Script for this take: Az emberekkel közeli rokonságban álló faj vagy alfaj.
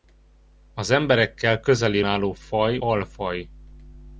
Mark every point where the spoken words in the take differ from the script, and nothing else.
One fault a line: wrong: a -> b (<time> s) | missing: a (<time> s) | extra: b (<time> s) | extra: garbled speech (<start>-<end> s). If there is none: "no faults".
missing: rokonságban (2.0 s)
missing: vagy (2.8 s)